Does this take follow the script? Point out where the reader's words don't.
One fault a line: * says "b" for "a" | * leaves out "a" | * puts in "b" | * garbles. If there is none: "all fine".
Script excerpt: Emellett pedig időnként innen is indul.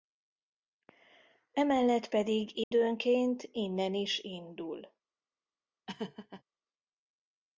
all fine